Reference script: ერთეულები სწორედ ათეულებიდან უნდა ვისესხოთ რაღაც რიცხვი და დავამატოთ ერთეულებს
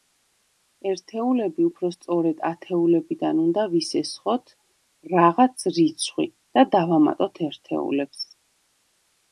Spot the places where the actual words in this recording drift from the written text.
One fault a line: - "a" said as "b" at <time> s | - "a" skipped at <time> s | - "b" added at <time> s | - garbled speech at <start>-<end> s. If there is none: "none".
- "უფრო" added at 1.7 s